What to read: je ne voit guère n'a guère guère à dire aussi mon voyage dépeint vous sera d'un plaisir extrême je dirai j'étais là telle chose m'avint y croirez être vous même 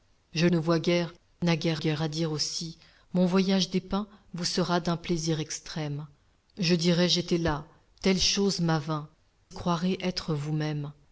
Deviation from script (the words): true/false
false